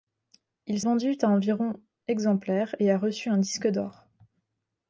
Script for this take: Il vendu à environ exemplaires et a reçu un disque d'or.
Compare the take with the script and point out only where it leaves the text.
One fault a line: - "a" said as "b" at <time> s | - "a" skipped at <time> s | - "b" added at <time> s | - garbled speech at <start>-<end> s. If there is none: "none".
none